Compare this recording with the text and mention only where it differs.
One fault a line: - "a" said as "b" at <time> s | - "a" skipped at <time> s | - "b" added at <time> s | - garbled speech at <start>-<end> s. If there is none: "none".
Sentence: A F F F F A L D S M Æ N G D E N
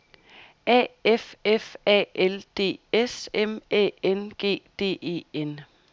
- "F F" skipped at 1.8 s